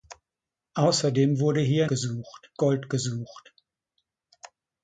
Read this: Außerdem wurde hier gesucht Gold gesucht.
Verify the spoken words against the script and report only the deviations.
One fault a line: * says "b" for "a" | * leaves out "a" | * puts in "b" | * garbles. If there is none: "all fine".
all fine